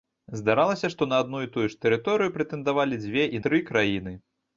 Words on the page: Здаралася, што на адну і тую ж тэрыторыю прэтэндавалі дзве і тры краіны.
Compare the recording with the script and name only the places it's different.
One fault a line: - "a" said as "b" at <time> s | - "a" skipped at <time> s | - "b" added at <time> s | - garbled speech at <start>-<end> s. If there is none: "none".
none